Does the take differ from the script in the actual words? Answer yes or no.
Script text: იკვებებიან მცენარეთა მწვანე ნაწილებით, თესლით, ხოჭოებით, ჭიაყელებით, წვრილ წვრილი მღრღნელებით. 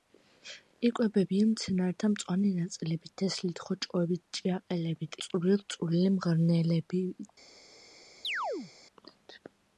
no